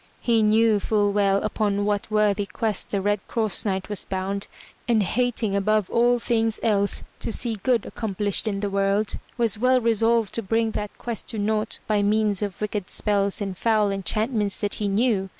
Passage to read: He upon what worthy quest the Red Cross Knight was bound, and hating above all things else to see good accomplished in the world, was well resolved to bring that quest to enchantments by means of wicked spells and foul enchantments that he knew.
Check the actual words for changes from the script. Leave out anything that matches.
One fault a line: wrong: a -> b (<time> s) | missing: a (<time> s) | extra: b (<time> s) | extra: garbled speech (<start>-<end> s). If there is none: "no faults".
extra: knew full well (0.4 s)
wrong: enchantments -> naught (11.4 s)